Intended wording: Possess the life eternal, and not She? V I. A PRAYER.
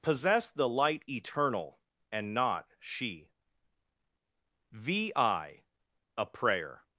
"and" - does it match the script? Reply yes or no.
yes